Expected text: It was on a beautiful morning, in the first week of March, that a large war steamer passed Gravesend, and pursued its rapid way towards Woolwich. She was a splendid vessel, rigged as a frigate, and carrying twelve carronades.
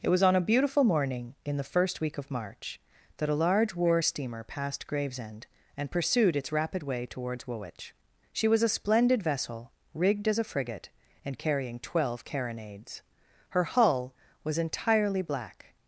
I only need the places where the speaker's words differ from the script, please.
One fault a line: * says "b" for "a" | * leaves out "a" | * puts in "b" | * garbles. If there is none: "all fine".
* puts in "Her hull was entirely black"